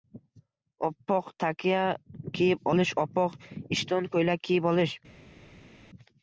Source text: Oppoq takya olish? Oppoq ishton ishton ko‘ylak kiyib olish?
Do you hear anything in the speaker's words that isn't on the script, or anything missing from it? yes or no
yes